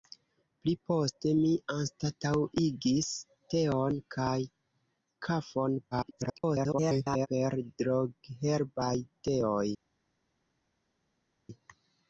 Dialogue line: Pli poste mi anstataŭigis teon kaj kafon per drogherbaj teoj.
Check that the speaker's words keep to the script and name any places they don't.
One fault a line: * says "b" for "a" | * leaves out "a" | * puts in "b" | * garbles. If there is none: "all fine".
* garbles